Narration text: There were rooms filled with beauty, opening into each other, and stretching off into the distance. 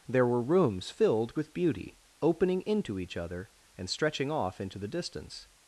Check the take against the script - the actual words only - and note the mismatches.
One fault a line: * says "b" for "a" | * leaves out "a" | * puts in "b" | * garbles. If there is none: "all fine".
all fine